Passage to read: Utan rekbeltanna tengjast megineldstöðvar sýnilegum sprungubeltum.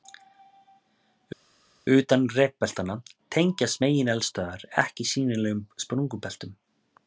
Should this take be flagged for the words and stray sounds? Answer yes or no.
yes